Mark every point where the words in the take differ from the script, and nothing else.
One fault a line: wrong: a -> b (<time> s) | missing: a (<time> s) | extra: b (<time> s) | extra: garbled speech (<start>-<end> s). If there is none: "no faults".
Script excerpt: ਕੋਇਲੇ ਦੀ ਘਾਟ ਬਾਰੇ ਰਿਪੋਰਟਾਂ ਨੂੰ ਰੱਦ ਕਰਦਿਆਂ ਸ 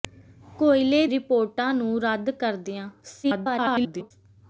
missing: ਦੀ ਘਾਟ ਬਾਰੇ (1.1 s)
extra: garbled speech (3.2-4.1 s)